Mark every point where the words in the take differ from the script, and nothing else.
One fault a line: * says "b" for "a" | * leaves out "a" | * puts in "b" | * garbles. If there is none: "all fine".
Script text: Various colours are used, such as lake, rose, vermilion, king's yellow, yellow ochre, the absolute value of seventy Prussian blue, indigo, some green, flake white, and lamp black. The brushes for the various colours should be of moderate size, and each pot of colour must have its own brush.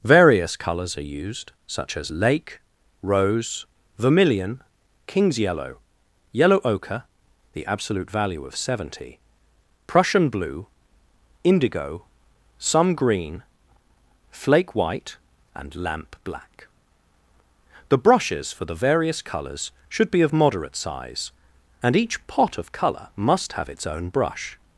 all fine